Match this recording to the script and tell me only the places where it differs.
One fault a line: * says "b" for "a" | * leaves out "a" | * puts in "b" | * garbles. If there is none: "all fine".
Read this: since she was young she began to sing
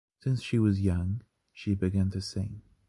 all fine